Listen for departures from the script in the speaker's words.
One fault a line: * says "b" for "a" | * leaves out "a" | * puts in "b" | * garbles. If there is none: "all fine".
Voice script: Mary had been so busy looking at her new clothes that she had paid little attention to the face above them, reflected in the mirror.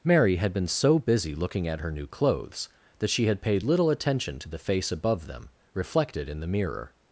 all fine